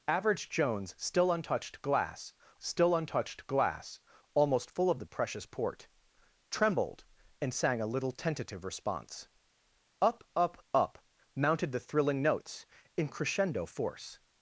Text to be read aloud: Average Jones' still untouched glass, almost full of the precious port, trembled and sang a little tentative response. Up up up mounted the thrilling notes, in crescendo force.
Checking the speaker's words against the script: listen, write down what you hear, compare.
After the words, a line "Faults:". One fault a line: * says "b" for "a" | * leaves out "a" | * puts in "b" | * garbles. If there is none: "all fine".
Average Jones' still untouched glass still untouched glass, almost full of the precious port, trembled and sang a little tentative response. Up up up mounted the thrilling notes, in crescendo force.
Faults:
* puts in "still untouched glass"